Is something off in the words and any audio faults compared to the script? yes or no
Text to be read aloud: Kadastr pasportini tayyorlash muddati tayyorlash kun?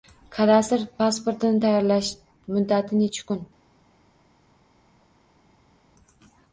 yes